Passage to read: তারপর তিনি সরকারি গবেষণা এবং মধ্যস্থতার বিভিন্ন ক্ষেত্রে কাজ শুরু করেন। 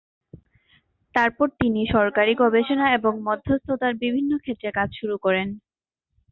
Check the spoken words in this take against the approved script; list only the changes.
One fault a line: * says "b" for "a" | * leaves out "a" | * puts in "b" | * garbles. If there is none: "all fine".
all fine